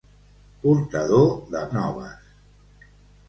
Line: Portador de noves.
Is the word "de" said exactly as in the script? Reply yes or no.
yes